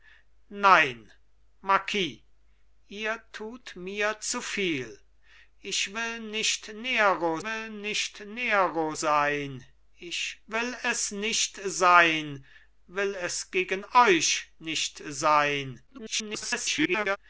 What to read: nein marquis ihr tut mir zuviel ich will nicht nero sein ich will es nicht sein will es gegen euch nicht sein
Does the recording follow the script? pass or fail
fail